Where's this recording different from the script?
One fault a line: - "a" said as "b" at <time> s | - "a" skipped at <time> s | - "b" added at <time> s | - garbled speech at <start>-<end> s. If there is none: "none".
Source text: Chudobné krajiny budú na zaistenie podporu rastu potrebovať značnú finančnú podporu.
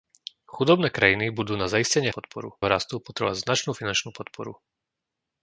none